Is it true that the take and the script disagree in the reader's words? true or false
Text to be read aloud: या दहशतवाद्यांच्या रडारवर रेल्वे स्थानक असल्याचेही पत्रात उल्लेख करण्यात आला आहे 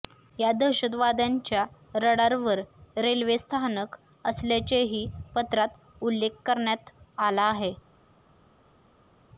false